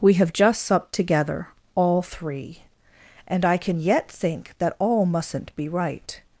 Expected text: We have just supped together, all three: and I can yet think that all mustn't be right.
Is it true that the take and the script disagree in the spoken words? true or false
false